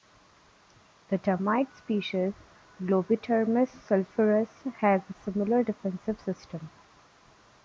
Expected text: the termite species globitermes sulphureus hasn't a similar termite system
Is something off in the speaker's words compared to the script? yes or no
yes